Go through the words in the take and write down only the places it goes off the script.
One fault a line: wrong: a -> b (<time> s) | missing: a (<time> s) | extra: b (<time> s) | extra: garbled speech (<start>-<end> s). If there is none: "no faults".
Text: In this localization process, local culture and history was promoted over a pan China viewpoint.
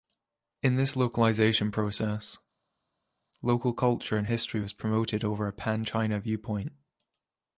no faults